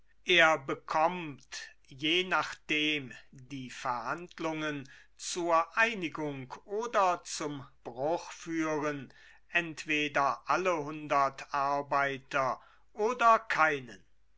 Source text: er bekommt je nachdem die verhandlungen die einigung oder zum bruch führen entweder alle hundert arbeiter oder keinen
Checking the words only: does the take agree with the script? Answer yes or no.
no